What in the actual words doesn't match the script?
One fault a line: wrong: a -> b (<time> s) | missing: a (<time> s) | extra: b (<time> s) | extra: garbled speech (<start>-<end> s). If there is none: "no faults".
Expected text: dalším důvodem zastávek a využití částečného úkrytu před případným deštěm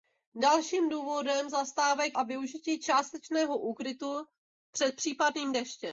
no faults